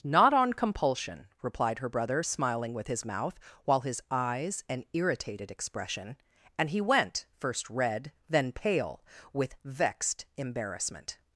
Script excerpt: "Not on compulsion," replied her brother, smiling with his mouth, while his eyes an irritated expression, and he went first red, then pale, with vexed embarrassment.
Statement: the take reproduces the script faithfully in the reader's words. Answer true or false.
true